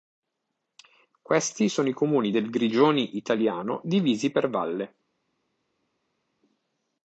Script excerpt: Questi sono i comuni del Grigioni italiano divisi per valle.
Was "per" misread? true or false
false